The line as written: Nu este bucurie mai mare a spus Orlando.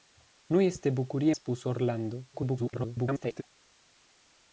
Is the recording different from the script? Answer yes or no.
yes